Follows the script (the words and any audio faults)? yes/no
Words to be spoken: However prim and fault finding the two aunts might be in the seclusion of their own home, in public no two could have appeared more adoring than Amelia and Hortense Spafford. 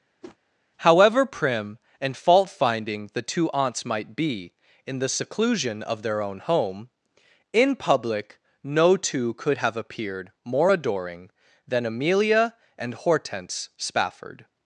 no